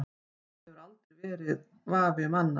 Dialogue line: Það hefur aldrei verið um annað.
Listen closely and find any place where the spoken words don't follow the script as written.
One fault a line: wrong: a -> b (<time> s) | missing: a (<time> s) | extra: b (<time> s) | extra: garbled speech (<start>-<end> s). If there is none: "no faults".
extra: vafi (1.9 s)